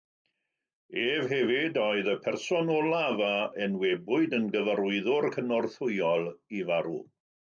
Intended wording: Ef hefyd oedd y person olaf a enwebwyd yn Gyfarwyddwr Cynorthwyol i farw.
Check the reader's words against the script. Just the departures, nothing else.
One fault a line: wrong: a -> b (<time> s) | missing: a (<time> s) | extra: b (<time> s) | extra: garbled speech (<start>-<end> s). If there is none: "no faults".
no faults